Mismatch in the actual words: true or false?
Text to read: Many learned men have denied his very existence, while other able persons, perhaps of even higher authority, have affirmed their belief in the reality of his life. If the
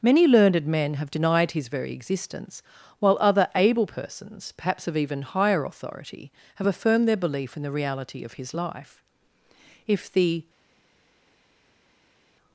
false